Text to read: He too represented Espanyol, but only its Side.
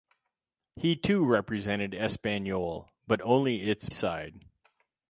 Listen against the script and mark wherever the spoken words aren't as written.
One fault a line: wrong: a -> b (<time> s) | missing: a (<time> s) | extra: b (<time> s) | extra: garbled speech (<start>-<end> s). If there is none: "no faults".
no faults